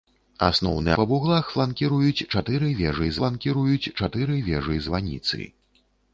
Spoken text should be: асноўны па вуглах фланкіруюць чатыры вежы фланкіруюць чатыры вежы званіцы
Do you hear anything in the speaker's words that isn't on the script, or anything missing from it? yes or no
no